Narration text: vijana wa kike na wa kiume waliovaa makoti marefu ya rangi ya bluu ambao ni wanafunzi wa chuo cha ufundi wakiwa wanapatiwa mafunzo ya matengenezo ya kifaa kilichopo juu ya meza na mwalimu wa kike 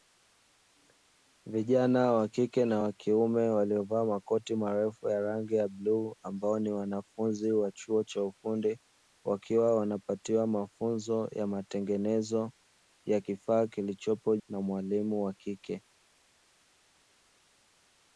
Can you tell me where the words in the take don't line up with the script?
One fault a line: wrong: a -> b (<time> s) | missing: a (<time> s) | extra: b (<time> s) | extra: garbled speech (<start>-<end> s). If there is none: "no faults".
missing: juu ya meza (14.4 s)